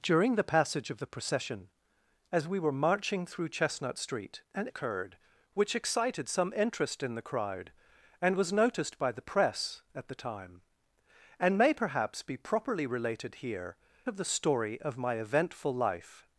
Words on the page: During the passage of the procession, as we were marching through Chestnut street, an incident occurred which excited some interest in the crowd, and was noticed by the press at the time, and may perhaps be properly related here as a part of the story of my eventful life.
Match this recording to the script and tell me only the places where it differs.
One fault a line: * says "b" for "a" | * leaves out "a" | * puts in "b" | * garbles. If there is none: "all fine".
* leaves out "incident"
* leaves out "as a part"